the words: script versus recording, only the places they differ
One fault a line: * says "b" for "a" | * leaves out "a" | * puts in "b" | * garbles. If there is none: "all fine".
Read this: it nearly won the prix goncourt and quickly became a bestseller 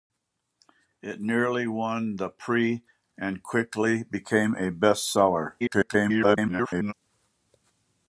* leaves out "goncourt"
* garbles